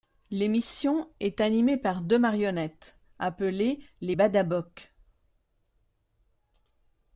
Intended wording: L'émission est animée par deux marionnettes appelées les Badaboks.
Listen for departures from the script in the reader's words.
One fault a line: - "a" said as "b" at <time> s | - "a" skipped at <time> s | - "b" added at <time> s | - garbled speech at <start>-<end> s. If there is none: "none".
none